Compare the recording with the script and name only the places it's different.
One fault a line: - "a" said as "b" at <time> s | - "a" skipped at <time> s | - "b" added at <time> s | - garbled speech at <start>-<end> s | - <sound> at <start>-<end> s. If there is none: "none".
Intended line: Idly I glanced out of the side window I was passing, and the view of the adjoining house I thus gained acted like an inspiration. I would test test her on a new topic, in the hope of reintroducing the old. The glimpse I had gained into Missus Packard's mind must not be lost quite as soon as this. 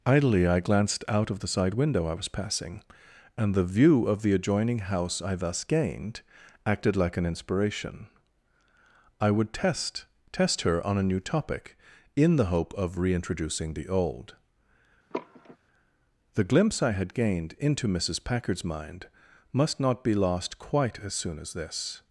- sigh at 15.1-15.6 s